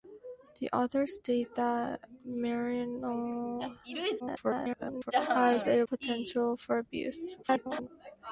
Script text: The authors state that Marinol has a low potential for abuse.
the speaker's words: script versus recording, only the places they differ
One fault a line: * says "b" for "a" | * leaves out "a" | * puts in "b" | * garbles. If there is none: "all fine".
* garbles
* leaves out "low"
* garbles